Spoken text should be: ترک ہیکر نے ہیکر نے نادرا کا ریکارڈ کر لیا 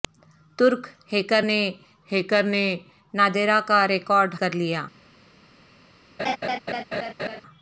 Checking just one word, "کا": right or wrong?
right